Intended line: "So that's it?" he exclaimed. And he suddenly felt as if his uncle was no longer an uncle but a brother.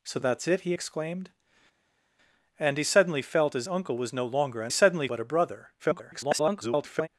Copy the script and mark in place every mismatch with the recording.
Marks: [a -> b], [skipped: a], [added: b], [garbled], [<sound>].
"So that's it?" he exclaimed. And he suddenly felt as [skipped: if his] uncle was no longer an [uncle -> suddenly] but a brother. [garbled]